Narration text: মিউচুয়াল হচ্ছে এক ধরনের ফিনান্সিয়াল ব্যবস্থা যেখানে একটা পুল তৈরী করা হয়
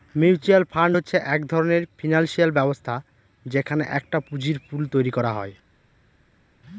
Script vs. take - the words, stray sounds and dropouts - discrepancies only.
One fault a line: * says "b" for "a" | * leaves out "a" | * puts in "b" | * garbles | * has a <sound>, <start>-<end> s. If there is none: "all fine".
* puts in "ফান্ড"
* puts in "পুঁজির"